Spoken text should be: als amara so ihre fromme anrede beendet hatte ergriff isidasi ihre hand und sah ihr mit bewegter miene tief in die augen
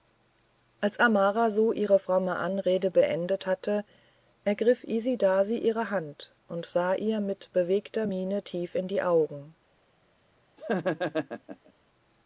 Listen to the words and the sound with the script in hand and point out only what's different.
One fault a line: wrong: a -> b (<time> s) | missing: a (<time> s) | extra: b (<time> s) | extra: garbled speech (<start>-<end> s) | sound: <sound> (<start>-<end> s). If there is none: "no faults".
sound: laugh (10.6-11.7 s)